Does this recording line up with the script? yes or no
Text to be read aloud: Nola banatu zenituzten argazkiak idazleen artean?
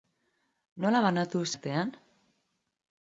no